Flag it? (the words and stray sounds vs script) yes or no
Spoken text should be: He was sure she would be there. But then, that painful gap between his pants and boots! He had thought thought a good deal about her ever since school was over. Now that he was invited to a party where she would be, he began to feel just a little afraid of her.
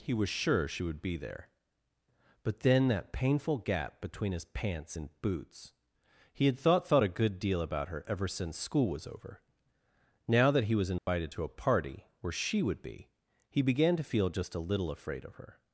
yes